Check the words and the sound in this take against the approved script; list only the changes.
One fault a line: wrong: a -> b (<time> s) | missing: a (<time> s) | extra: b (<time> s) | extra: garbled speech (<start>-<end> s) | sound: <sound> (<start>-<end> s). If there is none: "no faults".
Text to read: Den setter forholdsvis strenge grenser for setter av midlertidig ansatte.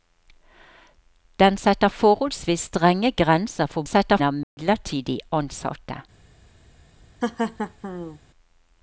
sound: dropout (4.4-4.6 s)
sound: laugh (7.2-8.2 s)